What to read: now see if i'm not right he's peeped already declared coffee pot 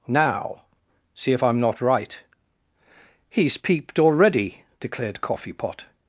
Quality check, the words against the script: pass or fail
pass